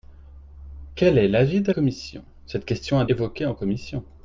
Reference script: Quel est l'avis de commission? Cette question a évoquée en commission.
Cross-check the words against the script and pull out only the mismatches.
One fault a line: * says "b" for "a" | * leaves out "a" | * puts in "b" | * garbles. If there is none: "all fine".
all fine